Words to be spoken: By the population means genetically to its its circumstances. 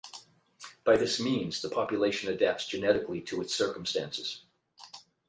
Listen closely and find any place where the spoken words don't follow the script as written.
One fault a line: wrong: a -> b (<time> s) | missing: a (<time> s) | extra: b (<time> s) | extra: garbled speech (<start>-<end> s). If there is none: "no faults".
extra: this means (1.0 s)
wrong: means -> adapts (2.3 s)
missing: its (3.5 s)